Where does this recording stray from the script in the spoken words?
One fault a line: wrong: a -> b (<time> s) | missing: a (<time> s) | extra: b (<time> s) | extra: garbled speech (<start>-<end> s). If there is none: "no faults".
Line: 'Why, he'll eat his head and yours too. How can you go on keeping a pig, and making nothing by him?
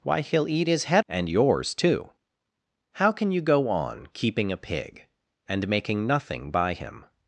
no faults